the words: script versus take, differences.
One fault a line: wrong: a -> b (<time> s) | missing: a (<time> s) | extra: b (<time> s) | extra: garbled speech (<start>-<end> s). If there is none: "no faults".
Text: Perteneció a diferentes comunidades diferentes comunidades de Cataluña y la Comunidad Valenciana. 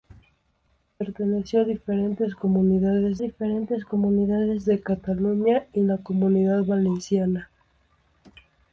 no faults